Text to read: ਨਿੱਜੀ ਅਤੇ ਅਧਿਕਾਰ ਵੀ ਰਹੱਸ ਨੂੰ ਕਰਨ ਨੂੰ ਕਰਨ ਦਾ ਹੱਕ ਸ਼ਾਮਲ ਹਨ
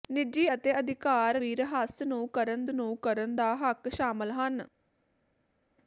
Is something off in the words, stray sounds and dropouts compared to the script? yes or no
no